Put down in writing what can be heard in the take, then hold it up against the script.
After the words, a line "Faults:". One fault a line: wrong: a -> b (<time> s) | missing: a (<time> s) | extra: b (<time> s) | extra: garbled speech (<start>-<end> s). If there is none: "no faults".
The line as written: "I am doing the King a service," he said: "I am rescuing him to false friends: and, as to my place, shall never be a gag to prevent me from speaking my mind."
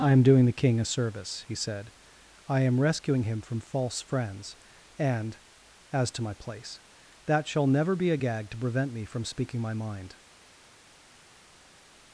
"I am doing the King a service," he said: "I am rescuing him from false friends: and, as to my place, that shall never be a gag to prevent me from speaking my mind."
Faults:
wrong: to -> from (3.4 s)
extra: that (7.3 s)